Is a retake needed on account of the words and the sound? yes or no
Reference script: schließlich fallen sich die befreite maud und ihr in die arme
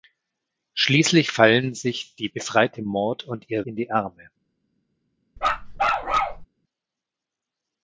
yes